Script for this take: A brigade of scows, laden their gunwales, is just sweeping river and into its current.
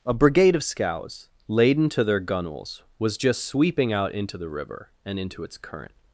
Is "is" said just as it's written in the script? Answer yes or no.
no